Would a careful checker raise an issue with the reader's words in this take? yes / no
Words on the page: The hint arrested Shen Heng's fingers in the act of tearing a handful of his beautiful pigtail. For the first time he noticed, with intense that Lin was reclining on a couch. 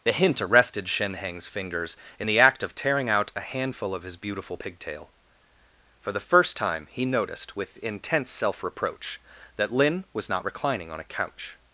yes